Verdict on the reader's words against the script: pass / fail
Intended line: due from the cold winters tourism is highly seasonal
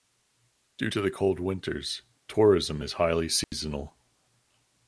fail